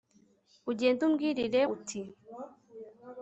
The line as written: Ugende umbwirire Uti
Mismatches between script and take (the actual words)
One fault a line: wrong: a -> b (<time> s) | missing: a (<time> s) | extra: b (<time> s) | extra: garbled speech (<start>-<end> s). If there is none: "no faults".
no faults